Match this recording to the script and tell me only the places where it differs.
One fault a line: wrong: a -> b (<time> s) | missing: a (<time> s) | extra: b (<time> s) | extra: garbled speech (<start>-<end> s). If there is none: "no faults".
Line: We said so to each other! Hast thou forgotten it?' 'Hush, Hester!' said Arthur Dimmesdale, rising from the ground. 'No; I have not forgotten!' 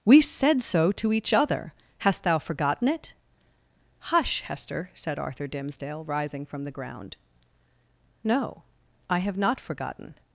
no faults